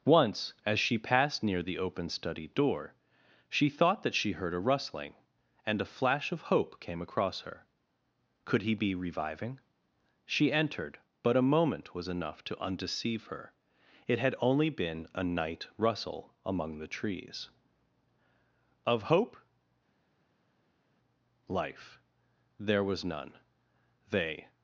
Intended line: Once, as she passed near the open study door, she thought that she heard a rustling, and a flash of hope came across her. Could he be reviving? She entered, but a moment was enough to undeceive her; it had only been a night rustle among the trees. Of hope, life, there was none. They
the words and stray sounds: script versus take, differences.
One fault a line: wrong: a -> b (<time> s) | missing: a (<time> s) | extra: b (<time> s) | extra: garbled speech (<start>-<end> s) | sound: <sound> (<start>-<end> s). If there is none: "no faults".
no faults